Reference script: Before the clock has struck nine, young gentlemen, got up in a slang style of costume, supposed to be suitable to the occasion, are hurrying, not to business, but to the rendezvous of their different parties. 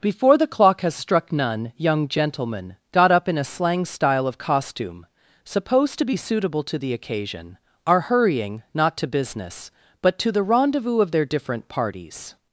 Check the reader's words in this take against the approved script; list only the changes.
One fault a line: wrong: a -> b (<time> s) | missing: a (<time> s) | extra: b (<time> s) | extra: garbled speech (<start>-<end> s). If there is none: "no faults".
wrong: nine -> none (1.3 s)